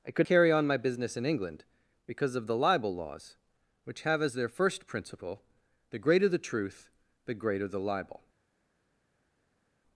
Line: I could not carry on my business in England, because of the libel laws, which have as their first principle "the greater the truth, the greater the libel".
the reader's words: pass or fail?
fail